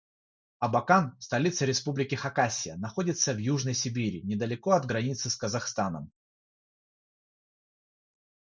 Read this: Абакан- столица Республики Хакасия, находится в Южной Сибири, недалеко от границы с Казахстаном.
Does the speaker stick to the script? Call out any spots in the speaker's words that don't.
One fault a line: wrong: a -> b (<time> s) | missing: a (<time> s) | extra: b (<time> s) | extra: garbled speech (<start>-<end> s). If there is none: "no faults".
no faults